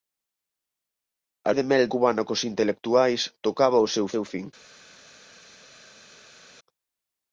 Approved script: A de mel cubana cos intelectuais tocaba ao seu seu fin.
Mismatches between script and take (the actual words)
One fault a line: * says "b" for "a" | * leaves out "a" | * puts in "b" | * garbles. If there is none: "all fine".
all fine